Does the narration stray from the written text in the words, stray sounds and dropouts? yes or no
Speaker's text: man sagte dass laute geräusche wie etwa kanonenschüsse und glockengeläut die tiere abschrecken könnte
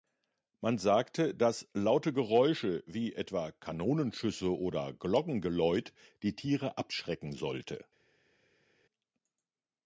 yes